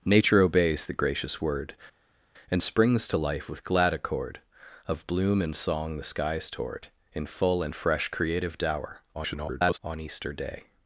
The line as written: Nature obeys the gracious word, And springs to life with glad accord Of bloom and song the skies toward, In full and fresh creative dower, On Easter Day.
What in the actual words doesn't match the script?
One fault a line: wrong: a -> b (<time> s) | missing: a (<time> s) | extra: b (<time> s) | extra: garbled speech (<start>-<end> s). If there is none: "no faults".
extra: garbled speech (9.1-9.8 s)